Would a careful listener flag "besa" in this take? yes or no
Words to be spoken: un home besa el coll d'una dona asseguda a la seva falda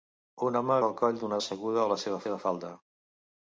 yes